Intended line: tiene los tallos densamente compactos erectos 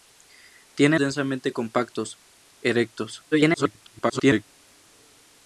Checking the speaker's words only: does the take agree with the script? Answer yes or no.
no